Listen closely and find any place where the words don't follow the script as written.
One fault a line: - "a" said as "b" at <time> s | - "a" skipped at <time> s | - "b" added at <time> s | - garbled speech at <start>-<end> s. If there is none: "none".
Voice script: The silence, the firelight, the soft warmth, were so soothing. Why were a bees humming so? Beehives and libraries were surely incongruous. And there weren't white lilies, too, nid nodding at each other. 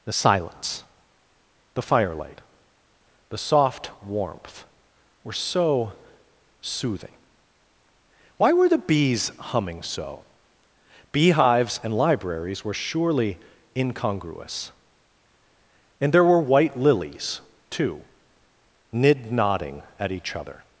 - "a" said as "the" at 8.7 s
- "weren't" said as "were" at 16.2 s